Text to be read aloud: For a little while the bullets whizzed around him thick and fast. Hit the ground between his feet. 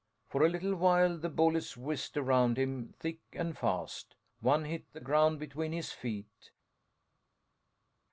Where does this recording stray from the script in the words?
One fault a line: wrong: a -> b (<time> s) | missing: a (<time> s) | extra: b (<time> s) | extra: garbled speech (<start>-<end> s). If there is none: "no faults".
extra: One (4.4 s)